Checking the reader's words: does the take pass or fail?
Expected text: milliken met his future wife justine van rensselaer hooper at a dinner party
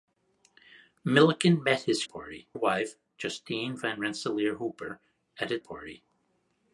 fail